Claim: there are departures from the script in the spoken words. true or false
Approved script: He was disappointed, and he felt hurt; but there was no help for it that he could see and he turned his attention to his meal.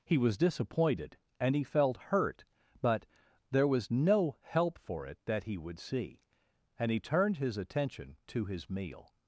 true